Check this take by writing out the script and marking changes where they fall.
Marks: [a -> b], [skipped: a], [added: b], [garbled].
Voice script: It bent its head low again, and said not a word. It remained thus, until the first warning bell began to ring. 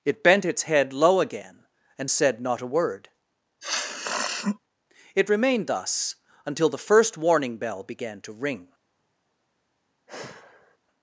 It bent its head low again, and said not a word. It remained thus, until the first warning bell began to ring.